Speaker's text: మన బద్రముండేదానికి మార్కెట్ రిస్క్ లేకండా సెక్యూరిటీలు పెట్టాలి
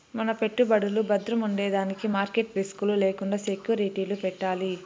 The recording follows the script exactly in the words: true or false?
false